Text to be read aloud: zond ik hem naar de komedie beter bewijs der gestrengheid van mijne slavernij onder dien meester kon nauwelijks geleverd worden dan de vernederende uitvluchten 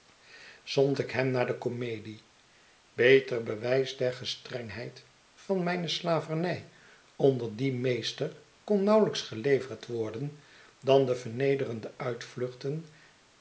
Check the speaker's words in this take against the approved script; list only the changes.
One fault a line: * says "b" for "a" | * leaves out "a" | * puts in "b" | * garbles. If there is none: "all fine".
all fine